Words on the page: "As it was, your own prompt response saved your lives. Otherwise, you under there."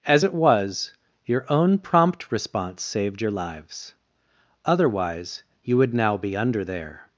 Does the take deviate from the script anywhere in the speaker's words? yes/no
yes